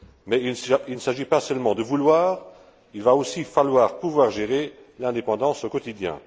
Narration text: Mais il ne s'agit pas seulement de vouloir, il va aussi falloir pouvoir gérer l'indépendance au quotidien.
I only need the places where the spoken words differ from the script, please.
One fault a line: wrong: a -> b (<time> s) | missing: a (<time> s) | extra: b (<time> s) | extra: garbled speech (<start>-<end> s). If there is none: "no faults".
no faults